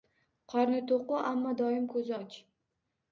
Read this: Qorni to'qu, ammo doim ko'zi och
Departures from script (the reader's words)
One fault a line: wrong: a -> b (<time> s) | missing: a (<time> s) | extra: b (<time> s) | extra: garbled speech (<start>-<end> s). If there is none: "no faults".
no faults